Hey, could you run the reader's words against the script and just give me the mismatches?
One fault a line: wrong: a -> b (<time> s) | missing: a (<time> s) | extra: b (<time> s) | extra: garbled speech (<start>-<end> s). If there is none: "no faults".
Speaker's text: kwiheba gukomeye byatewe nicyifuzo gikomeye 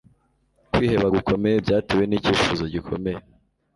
no faults